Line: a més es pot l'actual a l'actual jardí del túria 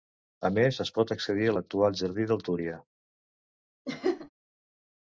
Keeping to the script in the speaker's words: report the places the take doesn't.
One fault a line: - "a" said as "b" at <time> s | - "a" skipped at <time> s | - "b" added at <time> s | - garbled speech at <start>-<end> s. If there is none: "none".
- "l'actual" said as "accedir" at 1.2 s